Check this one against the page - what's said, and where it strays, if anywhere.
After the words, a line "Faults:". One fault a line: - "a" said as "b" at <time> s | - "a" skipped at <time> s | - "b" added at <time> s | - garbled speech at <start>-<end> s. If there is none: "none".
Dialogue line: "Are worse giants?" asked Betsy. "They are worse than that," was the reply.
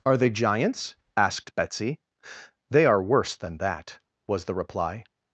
"Are they giants?" asked Betsy. "They are worse than that," was the reply.
Faults:
- "worse" said as "they" at 0.2 s